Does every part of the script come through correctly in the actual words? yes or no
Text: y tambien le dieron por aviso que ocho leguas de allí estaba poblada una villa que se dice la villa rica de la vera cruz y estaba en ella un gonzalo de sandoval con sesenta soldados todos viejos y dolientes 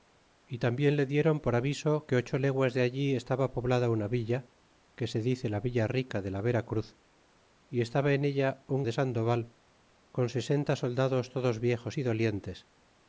no